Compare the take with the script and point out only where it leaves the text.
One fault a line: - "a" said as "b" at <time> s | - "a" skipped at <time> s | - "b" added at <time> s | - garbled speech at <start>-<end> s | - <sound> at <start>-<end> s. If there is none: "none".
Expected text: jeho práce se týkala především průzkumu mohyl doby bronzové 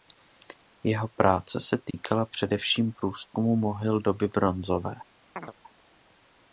- dropout at 1.9-1.9 s
- chirp at 5.4-5.5 s